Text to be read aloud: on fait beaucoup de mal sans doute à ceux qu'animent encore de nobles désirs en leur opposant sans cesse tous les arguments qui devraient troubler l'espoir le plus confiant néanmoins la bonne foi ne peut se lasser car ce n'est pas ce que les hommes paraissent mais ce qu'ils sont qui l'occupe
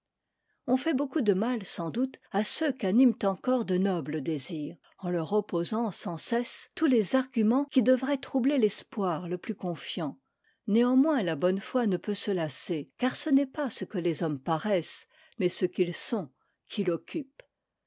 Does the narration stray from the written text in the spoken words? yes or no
no